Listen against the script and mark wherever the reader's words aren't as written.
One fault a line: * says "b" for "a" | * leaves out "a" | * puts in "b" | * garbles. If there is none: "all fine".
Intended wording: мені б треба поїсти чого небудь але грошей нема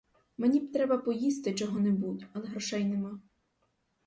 all fine